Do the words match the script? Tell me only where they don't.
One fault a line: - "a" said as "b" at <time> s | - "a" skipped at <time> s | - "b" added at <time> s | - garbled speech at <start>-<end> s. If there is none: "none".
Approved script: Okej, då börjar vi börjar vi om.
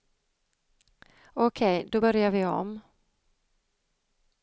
- "börjar vi" skipped at 2.4 s